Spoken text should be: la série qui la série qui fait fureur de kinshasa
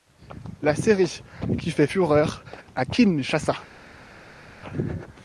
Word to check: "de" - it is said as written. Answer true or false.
false